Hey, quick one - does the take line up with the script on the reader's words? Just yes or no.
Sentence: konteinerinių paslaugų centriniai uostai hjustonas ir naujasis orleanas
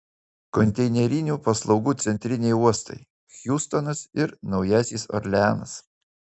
yes